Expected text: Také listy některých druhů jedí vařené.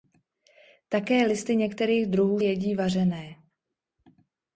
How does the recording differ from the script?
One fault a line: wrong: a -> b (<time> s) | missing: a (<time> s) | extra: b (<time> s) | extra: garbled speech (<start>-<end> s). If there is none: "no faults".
no faults